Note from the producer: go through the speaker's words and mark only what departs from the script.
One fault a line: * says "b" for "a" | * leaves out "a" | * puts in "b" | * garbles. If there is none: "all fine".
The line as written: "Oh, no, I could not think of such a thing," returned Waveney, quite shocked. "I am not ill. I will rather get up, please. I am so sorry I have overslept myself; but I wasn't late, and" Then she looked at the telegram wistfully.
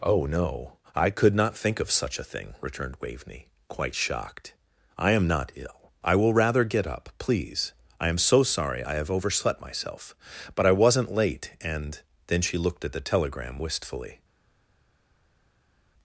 all fine